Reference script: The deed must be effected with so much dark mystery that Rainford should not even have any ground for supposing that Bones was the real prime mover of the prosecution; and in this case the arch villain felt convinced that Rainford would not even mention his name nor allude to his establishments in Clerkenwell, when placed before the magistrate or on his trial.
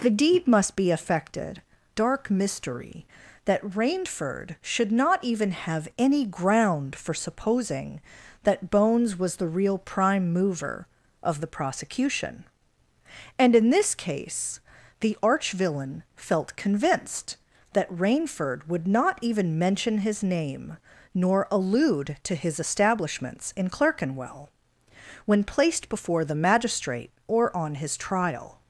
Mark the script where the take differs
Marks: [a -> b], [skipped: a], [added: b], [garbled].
The deed must be effected [skipped: with so much] dark mystery that Rainford should not even have any ground for supposing that Bones was the real prime mover of the prosecution; and in this case the arch villain felt convinced that Rainford would not even mention his name nor allude to his establishments in Clerkenwell, when placed before the magistrate or on his trial.